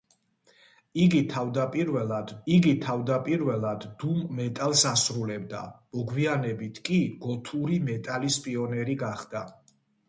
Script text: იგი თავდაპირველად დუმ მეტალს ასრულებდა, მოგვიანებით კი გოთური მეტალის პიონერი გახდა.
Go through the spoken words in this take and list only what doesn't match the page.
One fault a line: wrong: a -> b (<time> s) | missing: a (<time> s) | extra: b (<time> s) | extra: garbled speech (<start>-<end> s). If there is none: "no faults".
extra: იგი თავდაპირველად (2.5 s)